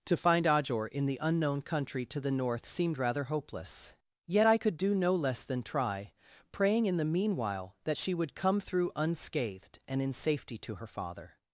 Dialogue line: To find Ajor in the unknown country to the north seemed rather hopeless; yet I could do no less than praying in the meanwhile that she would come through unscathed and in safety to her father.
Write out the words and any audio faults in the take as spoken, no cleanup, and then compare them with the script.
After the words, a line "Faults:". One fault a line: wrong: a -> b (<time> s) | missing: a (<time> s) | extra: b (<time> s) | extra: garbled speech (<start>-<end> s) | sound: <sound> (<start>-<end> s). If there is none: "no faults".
To find Ajor in the unknown country to the north seemed rather hopeless; yet I could do no less than try, praying in the meanwhile that she would come through unscathed and in safety to her father.
Faults:
extra: try (5.6 s)